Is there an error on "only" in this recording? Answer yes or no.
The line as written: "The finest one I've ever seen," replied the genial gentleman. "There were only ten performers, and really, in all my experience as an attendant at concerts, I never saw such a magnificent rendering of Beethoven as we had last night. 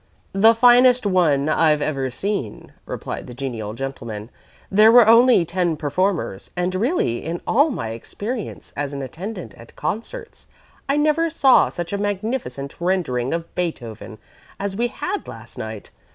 no